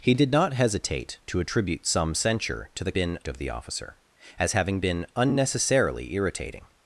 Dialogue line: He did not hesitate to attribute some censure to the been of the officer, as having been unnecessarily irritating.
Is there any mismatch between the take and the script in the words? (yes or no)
no